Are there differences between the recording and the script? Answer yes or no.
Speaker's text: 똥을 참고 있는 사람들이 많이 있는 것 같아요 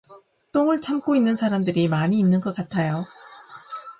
no